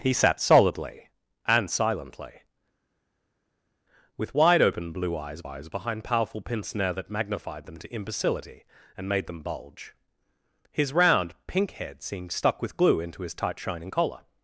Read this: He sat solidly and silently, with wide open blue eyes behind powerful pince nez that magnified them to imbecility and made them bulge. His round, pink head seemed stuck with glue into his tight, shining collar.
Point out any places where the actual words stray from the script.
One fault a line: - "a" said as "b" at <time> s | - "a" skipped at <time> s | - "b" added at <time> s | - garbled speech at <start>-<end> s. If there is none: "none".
- "eyes" added at 5.4 s